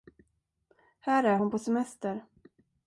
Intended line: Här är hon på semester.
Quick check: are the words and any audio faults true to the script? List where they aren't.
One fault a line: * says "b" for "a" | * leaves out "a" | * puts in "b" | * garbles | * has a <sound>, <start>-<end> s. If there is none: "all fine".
all fine